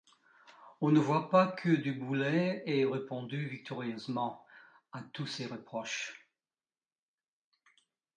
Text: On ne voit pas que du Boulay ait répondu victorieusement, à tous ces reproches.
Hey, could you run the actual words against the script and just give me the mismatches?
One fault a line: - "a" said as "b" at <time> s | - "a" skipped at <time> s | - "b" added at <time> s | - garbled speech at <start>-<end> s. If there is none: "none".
none